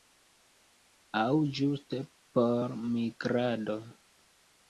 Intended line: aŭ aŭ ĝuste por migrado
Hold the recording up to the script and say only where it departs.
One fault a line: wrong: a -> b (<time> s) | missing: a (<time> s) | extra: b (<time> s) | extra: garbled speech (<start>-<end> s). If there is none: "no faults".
missing: aŭ (1.3 s)